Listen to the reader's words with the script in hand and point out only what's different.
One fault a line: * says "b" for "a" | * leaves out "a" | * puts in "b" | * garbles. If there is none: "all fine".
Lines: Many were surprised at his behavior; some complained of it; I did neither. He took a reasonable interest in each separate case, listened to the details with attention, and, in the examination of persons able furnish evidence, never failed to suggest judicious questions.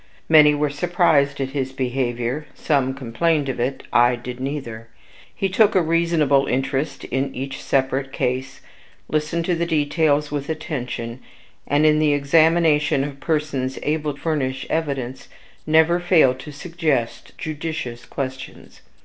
all fine